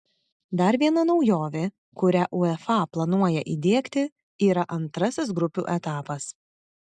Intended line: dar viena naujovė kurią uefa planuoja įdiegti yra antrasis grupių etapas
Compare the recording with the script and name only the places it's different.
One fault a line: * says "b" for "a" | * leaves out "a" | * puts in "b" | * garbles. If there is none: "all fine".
all fine